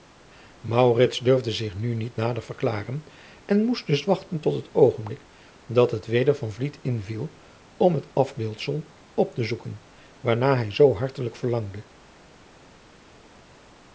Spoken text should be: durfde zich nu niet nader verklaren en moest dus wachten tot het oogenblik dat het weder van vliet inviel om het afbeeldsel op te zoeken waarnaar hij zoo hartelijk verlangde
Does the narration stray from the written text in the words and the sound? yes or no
no